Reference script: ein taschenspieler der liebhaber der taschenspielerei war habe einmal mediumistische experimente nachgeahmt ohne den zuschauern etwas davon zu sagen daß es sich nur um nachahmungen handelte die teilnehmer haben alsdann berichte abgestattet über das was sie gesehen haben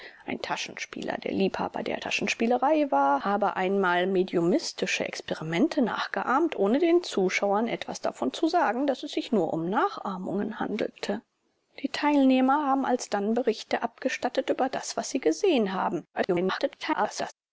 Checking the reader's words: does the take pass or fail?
fail